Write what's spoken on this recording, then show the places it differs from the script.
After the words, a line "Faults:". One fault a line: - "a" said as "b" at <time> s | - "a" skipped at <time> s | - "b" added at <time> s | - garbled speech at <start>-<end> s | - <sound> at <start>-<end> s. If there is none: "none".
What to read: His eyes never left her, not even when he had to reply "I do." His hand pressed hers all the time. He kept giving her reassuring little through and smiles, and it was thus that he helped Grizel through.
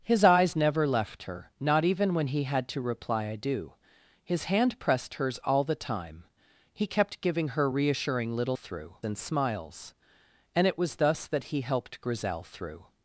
His eyes never left her, not even when he had to reply "I do." His hand pressed hers all the time. He kept giving her reassuring little through and smiles, and it was thus that he helped Grizel through.
Faults:
none